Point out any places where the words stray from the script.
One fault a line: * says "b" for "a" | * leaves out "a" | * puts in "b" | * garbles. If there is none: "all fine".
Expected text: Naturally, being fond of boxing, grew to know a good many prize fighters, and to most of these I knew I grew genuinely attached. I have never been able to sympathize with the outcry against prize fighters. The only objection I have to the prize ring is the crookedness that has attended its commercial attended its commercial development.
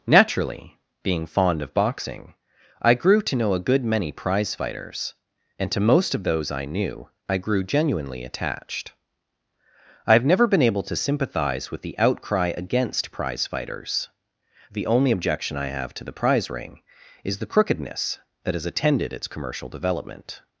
* puts in "I"
* says "those" for "these"
* leaves out "attended its commercial"